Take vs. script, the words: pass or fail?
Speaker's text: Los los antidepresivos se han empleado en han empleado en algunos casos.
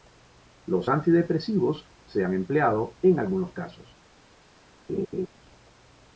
fail